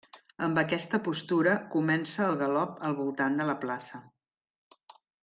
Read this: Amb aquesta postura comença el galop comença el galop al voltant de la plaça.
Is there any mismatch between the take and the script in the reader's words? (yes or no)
yes